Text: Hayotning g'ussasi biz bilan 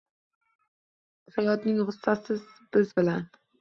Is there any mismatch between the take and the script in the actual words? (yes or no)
no